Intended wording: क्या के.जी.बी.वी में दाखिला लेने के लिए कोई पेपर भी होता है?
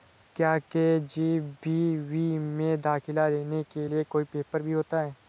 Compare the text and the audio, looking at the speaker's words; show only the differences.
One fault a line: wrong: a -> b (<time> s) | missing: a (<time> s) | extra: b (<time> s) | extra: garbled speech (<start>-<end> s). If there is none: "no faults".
no faults